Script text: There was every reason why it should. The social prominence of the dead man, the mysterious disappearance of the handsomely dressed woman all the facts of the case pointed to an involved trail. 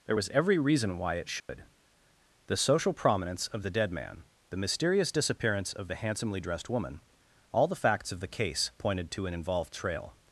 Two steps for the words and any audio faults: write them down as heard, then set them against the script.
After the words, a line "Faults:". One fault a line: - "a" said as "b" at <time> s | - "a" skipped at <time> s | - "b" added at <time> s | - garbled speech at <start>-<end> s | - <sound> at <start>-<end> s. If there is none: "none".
There was every reason why it should. The social prominence of the dead man, the mysterious disappearance of the handsomely dressed woman all the facts of the case pointed to an involved trail.
Faults:
- dropout at 1.4-1.5 s